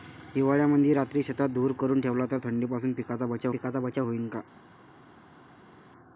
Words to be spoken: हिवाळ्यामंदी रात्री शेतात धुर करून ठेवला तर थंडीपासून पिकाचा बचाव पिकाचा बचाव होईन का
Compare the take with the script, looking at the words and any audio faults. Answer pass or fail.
pass